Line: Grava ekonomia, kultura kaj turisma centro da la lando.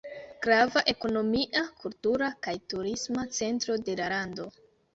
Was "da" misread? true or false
true